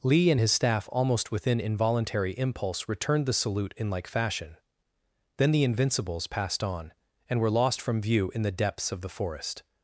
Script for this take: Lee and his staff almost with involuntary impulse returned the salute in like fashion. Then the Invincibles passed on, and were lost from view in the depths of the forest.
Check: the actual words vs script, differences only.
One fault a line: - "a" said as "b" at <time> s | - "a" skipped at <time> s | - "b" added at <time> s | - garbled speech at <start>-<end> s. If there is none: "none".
- "with" said as "within" at 1.3 s